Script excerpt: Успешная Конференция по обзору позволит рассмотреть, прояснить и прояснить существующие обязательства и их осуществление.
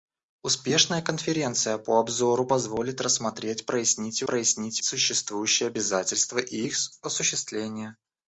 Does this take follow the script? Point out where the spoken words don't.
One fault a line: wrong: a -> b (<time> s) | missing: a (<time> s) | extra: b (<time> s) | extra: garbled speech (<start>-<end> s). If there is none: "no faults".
no faults